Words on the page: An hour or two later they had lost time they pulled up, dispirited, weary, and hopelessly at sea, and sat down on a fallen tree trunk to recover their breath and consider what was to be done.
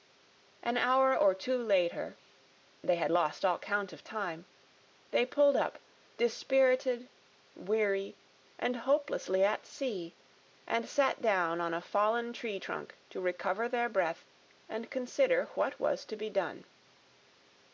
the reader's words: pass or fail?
fail